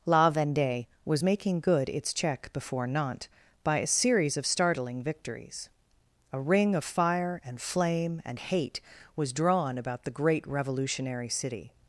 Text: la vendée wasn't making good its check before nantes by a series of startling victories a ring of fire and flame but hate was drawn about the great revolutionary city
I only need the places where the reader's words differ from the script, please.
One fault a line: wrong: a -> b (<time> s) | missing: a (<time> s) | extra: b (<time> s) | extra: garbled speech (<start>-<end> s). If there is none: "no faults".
wrong: wasn't -> was (1.1 s)
wrong: but -> and (8.2 s)